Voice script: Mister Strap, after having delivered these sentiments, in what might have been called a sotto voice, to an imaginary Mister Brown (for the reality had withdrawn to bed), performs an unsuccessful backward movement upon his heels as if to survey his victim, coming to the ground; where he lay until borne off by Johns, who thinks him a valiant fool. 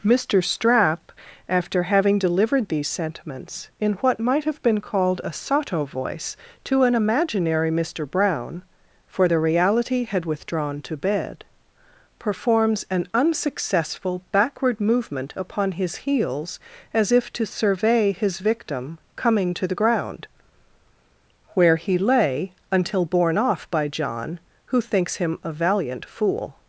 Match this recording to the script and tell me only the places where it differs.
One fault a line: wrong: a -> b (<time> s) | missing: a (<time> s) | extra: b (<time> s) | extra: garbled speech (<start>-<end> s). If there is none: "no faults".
wrong: Johns -> John (23.9 s)